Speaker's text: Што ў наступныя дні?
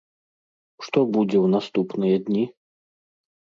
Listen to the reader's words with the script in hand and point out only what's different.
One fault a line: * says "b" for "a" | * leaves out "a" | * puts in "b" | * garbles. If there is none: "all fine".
* puts in "будзе"